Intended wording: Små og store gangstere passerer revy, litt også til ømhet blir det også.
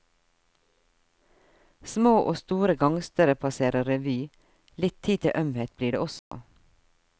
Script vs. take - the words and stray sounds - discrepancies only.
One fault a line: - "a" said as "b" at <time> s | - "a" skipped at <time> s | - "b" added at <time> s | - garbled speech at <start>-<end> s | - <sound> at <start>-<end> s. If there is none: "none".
- "også" said as "tid" at 5.0 s
- dropout at 6.2-6.3 s